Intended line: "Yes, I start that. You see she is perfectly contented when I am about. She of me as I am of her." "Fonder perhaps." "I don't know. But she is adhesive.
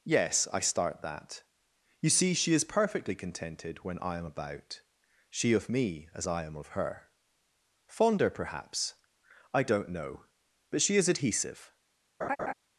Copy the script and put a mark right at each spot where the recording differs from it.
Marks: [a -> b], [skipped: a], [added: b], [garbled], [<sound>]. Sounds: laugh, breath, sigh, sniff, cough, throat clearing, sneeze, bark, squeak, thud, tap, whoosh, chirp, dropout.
"Yes, I start that. You see she is perfectly contented when I am about. She of me as I am of her." "Fonder perhaps." "I don't know. But she is adhesive. [laugh]